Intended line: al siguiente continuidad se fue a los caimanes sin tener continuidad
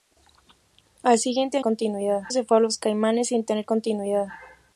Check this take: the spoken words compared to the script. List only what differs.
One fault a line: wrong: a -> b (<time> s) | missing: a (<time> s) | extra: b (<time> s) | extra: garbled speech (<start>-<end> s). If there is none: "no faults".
no faults